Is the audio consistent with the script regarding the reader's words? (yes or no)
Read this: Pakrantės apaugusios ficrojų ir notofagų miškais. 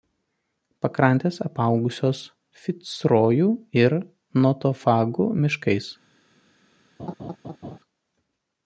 yes